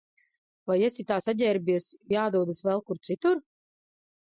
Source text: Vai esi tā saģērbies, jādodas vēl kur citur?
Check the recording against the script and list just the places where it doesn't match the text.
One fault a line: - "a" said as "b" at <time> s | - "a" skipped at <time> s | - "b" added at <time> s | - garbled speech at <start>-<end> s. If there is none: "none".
none